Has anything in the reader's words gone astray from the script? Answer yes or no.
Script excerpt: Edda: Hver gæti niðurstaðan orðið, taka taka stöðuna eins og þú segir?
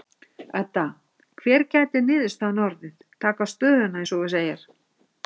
yes